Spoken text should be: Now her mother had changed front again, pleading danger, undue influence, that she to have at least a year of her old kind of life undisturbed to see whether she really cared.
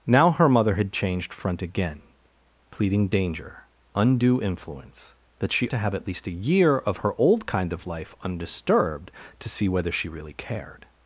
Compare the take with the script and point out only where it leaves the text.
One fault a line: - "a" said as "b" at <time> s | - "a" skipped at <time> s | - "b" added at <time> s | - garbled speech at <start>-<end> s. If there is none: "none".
none